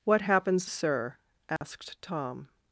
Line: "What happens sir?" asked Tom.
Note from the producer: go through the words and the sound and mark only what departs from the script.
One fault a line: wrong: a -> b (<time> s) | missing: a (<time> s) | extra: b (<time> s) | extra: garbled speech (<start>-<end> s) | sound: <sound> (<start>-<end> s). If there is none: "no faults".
sound: dropout (1.6-1.6 s)